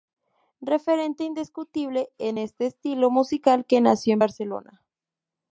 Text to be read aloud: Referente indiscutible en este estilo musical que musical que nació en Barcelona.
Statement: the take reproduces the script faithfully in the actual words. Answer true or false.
false